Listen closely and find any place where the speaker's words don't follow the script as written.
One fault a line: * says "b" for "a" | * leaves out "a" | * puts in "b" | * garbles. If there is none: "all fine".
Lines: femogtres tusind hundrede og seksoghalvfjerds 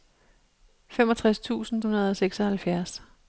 all fine